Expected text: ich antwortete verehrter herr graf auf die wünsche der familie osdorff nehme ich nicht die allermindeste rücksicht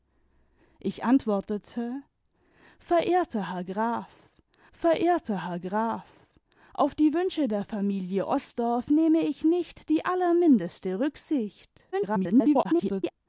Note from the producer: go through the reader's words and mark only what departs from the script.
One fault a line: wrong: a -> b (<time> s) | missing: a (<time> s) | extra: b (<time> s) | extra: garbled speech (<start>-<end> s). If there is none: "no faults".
extra: verehrter herr graf (4.7 s)
extra: garbled speech (11.9-13.1 s)